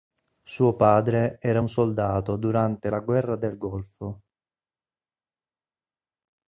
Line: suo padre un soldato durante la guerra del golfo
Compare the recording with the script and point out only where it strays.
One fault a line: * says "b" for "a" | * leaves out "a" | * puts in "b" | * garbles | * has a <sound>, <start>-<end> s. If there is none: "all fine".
* puts in "era"